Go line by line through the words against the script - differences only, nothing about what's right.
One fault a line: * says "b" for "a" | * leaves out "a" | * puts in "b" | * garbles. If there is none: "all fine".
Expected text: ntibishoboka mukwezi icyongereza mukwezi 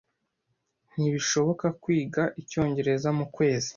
* says "kwiga" for "mukwezi"